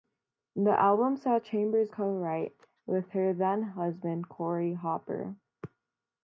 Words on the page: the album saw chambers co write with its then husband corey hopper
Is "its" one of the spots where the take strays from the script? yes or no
yes